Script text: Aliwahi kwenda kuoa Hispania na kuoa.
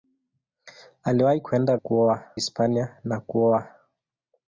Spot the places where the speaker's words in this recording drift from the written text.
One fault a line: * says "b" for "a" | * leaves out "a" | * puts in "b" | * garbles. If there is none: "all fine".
all fine